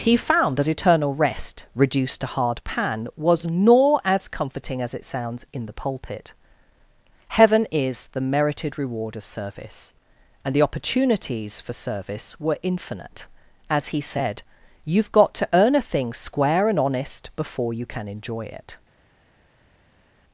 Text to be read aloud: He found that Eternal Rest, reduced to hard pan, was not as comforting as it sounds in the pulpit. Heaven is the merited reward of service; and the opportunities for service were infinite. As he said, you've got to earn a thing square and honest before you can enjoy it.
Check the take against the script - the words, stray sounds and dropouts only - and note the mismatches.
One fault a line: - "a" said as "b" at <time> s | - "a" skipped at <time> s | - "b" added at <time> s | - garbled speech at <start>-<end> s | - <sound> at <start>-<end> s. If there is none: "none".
- "not" said as "nor" at 3.5 s